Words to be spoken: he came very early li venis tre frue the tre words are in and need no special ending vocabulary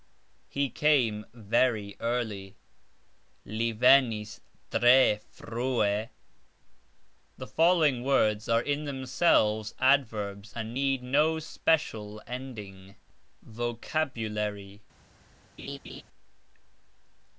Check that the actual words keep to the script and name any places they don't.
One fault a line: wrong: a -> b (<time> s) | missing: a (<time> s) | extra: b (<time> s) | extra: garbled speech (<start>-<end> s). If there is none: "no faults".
wrong: tre -> following (7.5 s)
extra: themselves adverbs (8.8 s)